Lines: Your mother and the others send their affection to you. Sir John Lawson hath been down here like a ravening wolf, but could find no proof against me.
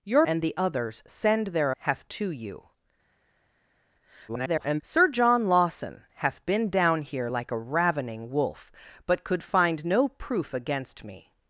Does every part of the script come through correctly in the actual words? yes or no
no